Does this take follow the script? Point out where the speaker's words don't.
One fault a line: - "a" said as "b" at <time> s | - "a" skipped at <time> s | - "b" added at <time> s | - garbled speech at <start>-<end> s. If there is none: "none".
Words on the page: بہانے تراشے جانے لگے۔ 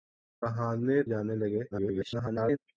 - "تراشے" skipped at 1.0 s
- garbled speech at 1.7-2.6 s